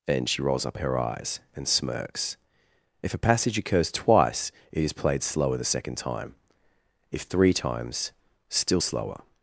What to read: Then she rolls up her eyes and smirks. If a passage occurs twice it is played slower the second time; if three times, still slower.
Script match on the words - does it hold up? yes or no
yes